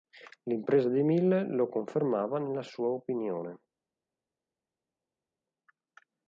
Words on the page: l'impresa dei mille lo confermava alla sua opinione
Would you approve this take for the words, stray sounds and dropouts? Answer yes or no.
no